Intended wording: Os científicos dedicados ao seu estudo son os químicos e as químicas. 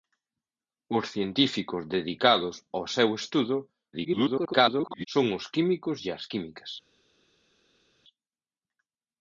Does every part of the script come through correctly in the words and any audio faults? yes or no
no